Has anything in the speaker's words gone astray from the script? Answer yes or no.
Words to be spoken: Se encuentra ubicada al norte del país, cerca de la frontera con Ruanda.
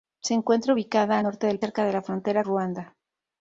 yes